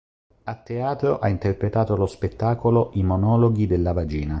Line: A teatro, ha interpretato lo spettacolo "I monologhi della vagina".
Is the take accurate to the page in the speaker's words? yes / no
yes